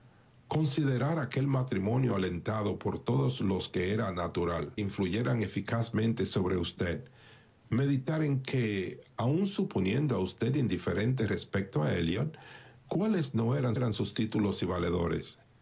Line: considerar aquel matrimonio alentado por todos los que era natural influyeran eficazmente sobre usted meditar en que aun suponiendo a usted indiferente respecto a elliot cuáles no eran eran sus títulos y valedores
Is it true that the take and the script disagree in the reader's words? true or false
false